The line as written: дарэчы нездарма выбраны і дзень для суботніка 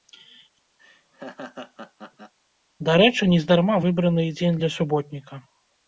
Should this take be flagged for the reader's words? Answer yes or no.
no